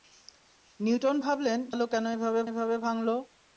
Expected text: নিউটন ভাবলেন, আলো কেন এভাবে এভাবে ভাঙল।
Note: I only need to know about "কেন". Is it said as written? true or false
true